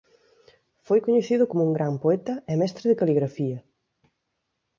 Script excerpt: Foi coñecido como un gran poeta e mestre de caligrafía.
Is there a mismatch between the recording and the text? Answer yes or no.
no